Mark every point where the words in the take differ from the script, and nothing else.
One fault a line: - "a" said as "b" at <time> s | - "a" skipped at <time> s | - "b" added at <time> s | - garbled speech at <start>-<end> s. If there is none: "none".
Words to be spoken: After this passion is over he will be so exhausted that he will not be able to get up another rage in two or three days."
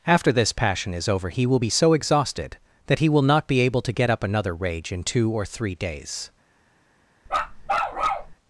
none